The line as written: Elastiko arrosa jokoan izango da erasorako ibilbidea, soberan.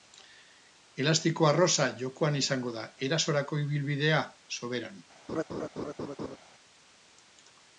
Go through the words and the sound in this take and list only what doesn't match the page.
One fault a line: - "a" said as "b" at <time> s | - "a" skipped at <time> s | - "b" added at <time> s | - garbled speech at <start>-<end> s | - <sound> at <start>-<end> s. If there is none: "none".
- laugh at 5.3-6.4 s